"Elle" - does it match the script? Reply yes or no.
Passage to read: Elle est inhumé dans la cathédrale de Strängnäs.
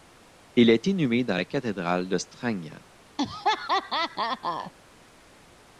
no